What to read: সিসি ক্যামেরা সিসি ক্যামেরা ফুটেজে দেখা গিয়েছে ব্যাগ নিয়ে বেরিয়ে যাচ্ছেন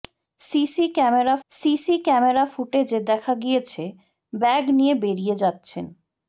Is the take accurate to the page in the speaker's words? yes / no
yes